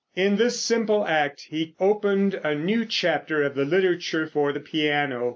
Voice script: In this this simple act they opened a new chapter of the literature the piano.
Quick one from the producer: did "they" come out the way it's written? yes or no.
no